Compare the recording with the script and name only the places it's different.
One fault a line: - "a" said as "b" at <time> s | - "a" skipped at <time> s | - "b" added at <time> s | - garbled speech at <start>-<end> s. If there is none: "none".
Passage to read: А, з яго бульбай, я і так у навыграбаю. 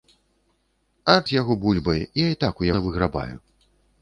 none